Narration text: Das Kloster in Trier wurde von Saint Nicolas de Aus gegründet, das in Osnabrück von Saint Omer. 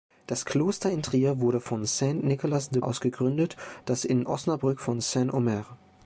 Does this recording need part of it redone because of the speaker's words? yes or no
no